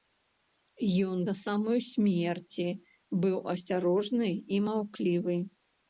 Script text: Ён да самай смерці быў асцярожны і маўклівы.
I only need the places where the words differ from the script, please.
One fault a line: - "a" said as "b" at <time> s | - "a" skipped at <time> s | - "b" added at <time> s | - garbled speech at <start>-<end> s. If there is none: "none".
none